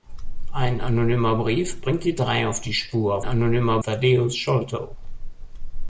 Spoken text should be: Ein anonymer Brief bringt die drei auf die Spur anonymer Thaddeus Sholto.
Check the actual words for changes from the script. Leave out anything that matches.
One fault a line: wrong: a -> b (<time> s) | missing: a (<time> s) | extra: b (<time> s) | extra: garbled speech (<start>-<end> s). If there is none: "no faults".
no faults